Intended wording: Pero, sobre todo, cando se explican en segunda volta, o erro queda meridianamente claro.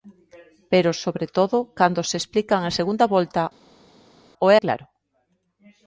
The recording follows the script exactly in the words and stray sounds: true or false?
false